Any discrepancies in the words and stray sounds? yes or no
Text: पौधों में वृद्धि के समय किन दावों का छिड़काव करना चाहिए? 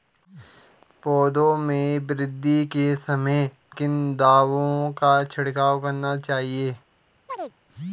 yes